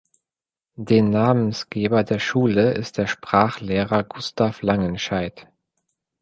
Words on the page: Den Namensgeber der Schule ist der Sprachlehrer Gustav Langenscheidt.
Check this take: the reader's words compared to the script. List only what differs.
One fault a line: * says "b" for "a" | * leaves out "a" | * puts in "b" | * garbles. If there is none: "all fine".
all fine